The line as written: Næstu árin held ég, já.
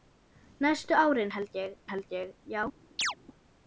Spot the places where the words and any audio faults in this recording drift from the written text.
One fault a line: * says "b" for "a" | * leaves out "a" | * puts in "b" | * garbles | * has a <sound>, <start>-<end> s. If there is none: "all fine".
* puts in "held ég"
* has a chirp, 3.0-3.1 s